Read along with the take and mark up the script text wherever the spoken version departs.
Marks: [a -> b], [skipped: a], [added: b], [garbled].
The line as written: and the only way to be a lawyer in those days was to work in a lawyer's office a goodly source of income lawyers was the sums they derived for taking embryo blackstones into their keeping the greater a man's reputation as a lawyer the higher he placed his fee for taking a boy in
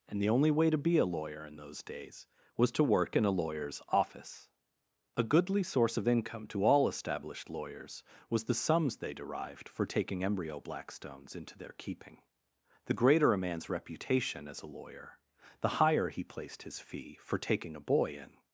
and the only way to be a lawyer in those days was to work in a lawyer's office a goodly source of income [added: to all established] lawyers was the sums they derived for taking embryo blackstones into their keeping the greater a man's reputation as a lawyer the higher he placed his fee for taking a boy in